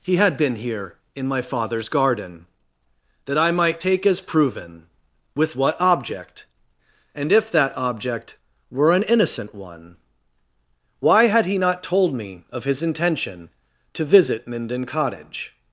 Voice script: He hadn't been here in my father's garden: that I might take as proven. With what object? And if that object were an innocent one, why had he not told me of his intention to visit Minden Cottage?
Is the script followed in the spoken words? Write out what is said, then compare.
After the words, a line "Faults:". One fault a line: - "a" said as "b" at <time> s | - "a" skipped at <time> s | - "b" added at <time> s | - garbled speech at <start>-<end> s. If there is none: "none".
He had been here in my father's garden: that I might take as proven. With what object? And if that object were an innocent one, why had he not told me of his intention to visit Minden Cottage?
Faults:
- "hadn't" said as "had" at 0.1 s